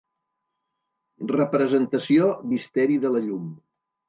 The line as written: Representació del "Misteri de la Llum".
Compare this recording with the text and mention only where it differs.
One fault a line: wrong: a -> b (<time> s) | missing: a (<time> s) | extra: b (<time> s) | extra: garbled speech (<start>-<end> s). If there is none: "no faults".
missing: del (2.3 s)